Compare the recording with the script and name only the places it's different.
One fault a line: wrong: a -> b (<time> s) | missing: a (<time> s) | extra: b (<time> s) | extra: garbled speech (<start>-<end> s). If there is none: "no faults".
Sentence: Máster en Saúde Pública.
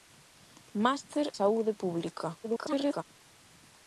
missing: en (1.3 s)
extra: garbled speech (2.4-3.0 s)